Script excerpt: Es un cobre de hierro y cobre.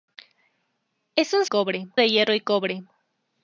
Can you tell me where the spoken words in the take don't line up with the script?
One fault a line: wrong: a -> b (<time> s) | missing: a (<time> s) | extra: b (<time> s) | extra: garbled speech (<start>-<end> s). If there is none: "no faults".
no faults